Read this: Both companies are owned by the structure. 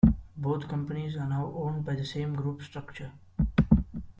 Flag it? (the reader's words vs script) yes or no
yes